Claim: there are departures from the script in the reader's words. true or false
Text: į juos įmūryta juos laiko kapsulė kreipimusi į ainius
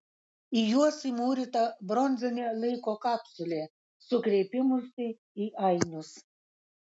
true